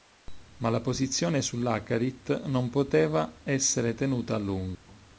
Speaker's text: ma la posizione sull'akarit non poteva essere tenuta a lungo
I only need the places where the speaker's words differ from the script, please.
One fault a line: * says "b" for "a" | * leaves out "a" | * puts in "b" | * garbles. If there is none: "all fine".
all fine